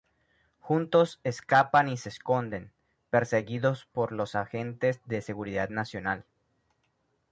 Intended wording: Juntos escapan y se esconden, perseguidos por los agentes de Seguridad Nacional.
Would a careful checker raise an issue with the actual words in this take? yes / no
no